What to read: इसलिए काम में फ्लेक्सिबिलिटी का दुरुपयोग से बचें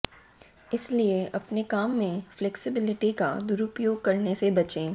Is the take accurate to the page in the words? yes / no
no